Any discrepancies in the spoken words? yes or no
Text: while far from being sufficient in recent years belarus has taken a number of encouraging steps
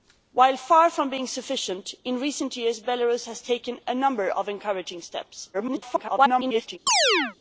yes